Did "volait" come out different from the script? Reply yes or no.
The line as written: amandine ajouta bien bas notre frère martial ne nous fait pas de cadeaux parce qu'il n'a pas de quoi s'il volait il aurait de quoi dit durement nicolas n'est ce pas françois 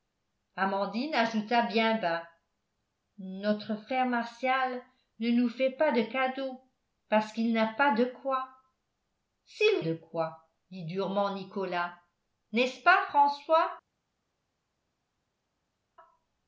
yes